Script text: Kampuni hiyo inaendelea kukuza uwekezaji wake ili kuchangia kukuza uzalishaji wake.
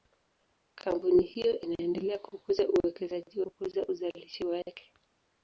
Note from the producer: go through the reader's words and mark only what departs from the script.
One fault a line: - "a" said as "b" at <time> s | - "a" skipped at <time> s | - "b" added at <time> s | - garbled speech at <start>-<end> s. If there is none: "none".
- "wake ili kuchangia" skipped at 3.4 s